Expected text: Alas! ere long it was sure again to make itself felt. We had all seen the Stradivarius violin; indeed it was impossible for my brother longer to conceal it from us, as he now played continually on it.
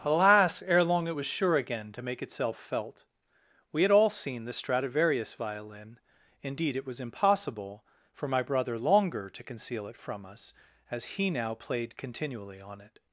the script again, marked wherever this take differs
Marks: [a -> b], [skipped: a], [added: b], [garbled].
Alas! ere long it was sure again to make itself felt. We had all seen the Stradivarius violin; indeed it was impossible for my brother longer to conceal it from us, as he now played continually on it.